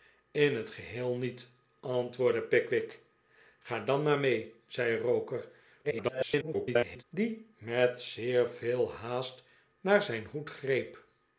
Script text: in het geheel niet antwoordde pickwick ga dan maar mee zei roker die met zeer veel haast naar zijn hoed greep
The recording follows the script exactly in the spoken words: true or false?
false